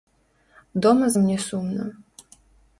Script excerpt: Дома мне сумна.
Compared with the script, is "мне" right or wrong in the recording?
right